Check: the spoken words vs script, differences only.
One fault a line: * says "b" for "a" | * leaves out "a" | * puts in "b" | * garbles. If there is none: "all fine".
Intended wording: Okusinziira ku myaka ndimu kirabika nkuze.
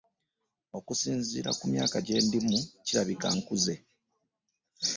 * puts in "gye"